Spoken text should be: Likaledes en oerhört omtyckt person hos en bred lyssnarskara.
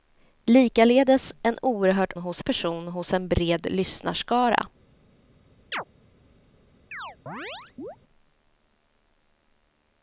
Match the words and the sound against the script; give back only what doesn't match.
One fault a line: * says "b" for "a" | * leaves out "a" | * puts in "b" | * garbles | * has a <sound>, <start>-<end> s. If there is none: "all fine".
* says "hos" for "omtyckt"
* has a chirp, 5.7-5.8 s
* has a chirp, 6.9-8.0 s